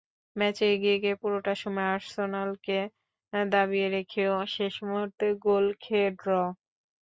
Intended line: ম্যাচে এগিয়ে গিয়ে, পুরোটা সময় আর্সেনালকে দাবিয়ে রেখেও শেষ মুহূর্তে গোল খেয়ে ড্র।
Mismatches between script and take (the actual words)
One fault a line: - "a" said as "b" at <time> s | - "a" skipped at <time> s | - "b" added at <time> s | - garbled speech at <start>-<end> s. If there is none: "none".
none